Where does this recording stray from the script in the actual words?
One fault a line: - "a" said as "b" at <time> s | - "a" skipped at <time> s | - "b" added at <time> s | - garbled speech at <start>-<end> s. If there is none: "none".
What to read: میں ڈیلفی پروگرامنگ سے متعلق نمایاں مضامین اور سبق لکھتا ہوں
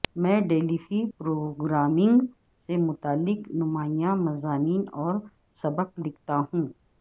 none